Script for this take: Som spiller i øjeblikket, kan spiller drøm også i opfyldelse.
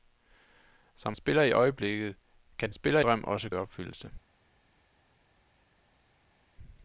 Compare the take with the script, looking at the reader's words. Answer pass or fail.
pass